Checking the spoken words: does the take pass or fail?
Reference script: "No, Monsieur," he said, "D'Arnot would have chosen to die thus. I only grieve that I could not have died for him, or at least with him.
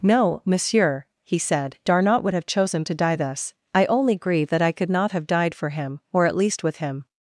pass